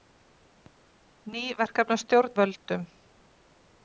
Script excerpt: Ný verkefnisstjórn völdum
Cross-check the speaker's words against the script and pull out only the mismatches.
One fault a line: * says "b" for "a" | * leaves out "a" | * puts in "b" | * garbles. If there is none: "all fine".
all fine